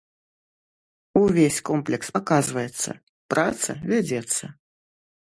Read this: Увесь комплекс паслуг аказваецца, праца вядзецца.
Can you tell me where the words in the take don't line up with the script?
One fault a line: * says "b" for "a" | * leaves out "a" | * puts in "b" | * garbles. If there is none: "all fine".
* leaves out "паслуг"